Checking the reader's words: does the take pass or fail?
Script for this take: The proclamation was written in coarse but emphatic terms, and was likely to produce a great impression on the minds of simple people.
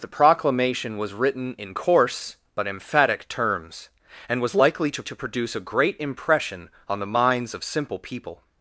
fail